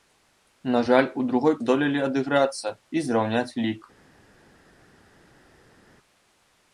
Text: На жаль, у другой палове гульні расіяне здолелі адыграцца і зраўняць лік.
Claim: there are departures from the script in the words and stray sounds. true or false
true